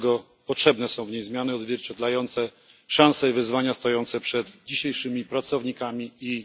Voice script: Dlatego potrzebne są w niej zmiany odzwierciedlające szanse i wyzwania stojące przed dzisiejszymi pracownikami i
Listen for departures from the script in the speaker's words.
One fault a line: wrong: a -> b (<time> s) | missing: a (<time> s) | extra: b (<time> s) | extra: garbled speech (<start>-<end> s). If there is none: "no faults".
no faults